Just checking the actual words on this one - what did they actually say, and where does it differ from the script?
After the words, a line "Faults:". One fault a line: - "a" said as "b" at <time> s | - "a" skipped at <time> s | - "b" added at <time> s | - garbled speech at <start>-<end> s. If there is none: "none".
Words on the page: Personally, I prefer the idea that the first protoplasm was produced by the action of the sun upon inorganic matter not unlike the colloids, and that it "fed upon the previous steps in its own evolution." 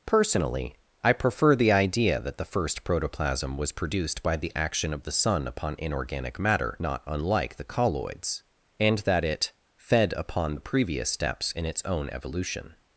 Personally, I prefer the idea that the first protoplasm was produced by the action of the sun upon inorganic matter not unlike the colloids, and that it "fed upon the previous steps in its own evolution."
Faults:
none